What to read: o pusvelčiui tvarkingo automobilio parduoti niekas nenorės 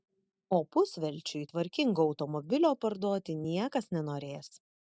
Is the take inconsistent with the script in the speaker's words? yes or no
no